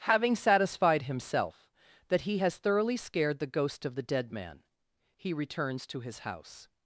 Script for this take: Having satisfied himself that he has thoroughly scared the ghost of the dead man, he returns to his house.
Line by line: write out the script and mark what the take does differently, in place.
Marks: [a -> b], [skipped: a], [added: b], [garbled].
Having satisfied himself that he has thoroughly scared the ghost of the dead man, he returns to his house.